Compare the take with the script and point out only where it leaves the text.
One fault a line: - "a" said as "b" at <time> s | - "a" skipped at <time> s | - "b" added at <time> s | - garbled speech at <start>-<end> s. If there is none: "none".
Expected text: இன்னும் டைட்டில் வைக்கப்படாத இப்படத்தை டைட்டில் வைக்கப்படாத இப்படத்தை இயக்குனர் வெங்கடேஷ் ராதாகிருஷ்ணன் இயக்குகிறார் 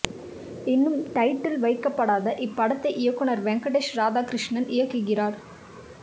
- "டைட்டில் வைக்கப்படாத இப்படத்தை" skipped at 2.9 s